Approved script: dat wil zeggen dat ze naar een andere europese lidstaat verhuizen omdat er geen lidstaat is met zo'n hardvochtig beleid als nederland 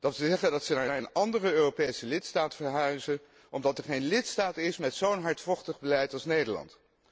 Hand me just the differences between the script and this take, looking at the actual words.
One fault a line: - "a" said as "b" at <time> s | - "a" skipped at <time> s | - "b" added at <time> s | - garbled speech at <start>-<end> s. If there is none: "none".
- "naar" added at 0.9 s